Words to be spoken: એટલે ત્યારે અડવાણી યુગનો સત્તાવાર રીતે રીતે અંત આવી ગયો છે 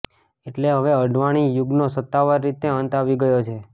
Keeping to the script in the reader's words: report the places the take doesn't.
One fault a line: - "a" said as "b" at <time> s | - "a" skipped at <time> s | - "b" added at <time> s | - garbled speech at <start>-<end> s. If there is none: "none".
- "ત્યારે" said as "હવે" at 0.7 s
- "રીતે" skipped at 2.7 s